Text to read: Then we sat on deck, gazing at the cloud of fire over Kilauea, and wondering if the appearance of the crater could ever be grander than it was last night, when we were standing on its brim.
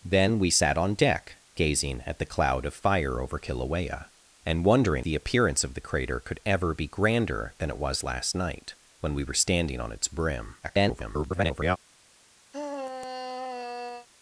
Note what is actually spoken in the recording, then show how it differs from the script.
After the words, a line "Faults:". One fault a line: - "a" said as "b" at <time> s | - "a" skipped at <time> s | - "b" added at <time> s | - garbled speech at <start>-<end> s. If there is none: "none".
Then we sat on deck, gazing at the cloud of fire over Kilauea, and wondering the appearance of the crater could ever be grander than it was last night, when we were standing on its brim. [garbled]
Faults:
- "if" skipped at 5.0 s
- garbled speech at 10.6-11.8 s